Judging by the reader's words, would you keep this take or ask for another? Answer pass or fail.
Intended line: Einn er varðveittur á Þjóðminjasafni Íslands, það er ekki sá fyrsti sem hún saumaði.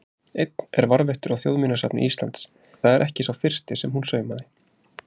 pass